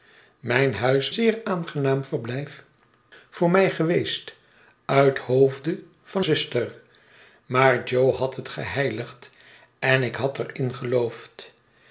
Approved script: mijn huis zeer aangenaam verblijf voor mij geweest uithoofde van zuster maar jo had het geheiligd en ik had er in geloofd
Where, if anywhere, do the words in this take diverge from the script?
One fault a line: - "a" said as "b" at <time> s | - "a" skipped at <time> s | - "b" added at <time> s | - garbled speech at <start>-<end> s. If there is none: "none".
none